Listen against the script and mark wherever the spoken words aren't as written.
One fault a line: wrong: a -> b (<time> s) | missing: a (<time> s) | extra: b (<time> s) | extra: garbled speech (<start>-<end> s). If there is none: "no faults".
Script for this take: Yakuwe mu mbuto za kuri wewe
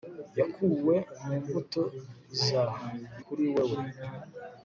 no faults